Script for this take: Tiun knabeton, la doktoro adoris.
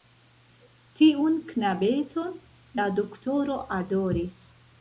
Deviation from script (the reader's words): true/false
false